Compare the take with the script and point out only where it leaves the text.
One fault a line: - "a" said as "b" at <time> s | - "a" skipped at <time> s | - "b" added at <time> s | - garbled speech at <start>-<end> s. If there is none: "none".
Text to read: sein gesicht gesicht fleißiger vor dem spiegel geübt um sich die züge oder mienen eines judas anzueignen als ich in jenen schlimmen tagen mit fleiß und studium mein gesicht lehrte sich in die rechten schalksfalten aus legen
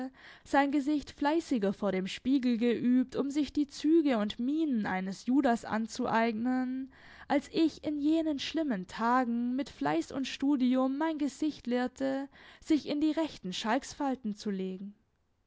- "gesicht" skipped at 1.1 s
- "oder" said as "und" at 4.2 s
- "aus" said as "zu" at 14.4 s